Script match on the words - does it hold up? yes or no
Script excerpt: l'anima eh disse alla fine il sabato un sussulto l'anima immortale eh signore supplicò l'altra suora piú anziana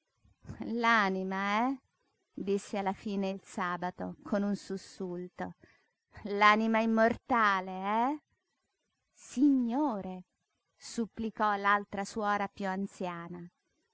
no